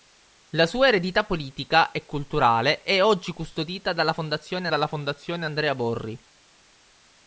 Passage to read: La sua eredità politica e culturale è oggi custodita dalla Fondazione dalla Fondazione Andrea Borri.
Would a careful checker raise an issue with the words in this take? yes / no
no